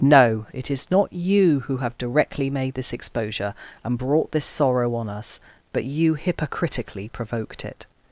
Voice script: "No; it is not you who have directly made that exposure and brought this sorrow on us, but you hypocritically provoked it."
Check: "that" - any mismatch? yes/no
yes